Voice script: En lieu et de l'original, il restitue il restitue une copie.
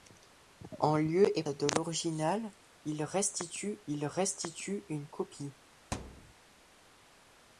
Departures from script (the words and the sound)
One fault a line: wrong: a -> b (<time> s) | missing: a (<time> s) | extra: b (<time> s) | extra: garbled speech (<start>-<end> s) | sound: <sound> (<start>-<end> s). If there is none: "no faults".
sound: thud (5.9-6.3 s)